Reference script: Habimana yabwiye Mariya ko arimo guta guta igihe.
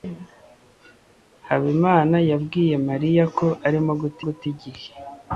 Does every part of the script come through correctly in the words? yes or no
yes